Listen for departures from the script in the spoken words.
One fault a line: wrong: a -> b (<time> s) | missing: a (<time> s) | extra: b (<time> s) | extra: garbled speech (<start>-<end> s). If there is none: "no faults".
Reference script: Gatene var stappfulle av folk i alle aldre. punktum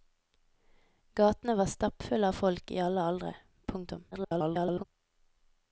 extra: garbled speech (4.1-4.8 s)